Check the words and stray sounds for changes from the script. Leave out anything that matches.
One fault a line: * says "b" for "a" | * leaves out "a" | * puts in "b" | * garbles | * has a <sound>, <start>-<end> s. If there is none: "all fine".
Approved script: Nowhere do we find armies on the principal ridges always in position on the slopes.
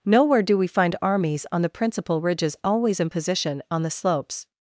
all fine